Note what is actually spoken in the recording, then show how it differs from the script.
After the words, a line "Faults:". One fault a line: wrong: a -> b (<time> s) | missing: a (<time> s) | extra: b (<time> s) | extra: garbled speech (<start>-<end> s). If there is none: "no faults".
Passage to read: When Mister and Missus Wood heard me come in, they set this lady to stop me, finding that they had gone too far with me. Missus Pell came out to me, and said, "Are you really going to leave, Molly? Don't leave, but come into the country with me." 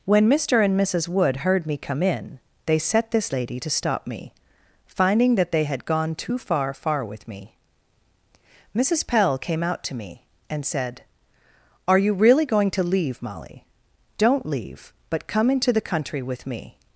When Mister and Missus Wood heard me come in, they set this lady to stop me, finding that they had gone too far far with me. Missus Pell came out to me, and said, "Are you really going to leave, Molly? Don't leave, but come into the country with me."
Faults:
extra: far (6.7 s)